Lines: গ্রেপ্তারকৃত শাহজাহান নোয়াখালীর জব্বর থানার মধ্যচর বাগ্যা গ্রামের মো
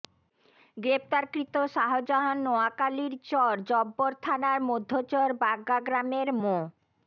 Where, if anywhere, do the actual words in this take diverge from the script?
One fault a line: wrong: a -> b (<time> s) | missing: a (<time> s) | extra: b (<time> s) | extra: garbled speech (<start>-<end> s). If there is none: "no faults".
extra: চর (3.3 s)